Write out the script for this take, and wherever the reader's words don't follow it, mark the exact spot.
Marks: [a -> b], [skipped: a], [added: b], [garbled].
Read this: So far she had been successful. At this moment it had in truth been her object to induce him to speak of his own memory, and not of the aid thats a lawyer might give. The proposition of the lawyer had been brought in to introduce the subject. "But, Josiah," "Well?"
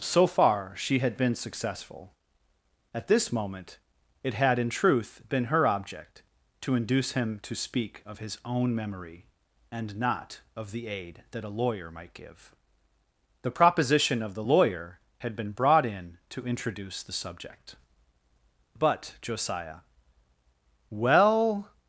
So far she had been successful. At this moment it had in truth been her object to induce him to speak of his own memory, and not of the aid [thats -> that] a lawyer might give. The proposition of the lawyer had been brought in to introduce the subject. "But, Josiah," "Well?"